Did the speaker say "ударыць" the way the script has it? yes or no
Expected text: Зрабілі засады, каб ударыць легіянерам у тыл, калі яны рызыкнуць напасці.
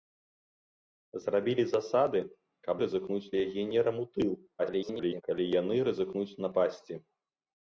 no